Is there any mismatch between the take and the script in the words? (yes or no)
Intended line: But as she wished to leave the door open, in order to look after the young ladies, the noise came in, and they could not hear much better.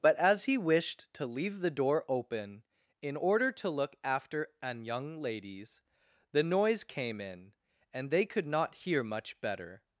yes